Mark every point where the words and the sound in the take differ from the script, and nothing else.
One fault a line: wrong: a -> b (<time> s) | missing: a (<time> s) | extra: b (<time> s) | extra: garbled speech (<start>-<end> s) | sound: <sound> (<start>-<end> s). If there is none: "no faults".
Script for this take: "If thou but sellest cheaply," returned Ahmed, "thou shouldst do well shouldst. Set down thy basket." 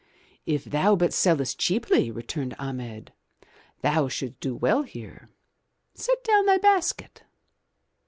wrong: shouldst -> here (4.8 s)